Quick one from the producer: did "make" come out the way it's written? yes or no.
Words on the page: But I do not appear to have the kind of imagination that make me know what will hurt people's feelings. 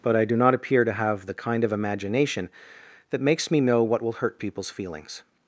no